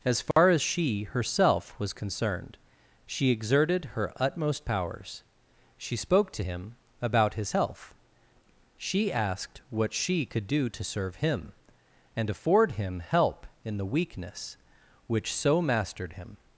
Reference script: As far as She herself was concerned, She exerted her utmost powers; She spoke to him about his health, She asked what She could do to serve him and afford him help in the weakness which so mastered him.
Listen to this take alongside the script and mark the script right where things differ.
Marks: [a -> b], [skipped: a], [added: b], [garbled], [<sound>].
As far [dropout] as She herself was concerned, She exerted her utmost powers; She spoke to him about his health, She asked what She could do to serve him and afford him help in the weakness which so mastered him.